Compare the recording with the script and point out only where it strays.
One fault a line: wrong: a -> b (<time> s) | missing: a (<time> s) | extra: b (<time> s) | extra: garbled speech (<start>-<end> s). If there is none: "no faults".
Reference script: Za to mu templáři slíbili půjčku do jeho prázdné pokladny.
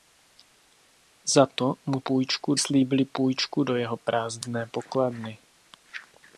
wrong: templáři -> půjčku (2.0 s)